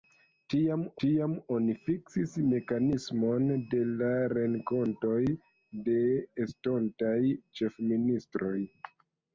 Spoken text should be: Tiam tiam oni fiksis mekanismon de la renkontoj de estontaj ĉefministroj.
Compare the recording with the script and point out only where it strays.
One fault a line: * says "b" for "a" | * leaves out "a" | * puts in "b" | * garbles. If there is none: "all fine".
all fine